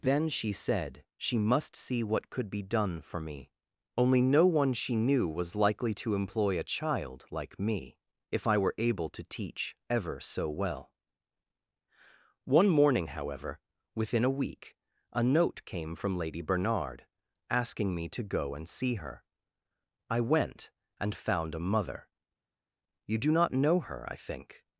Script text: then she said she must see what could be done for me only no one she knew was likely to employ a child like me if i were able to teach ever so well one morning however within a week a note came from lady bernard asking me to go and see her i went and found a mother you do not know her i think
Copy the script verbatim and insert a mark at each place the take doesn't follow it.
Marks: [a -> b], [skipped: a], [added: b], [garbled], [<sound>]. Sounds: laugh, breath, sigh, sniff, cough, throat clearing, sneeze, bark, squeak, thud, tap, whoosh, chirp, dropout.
then she said she must see what could be done for me only no one she knew was likely to employ a child like me if i were able to teach ever so well one morning however within a week a note came from lady bernard asking me to go and see her i went and found a mother you do not know her i think